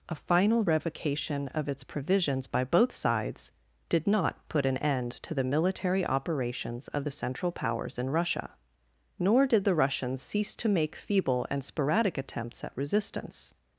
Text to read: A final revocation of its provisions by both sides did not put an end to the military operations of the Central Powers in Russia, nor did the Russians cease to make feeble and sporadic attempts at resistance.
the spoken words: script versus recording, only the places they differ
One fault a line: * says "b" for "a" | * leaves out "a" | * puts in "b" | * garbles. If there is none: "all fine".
all fine